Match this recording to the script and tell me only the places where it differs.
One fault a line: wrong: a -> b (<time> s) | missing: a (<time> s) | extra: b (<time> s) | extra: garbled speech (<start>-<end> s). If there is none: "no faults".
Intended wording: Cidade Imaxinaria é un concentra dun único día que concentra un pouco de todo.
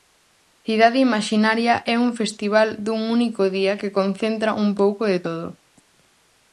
wrong: concentra -> festival (2.2 s)